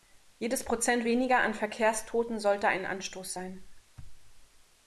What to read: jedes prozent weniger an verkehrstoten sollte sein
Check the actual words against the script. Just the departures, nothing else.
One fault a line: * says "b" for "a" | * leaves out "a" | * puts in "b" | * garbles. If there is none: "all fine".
* puts in "ein anstoß"